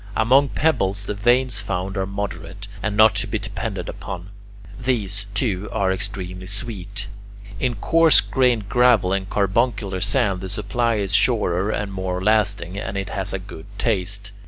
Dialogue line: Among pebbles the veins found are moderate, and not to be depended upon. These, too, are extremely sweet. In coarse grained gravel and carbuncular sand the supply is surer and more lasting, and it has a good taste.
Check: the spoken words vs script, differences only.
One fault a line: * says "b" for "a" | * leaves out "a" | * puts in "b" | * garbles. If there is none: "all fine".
all fine